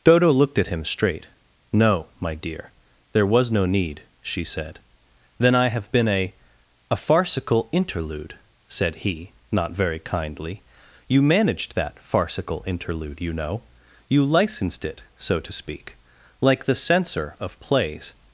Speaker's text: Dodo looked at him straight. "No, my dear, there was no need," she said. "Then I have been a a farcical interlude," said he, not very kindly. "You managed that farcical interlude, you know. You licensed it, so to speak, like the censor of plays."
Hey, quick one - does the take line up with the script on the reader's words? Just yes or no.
yes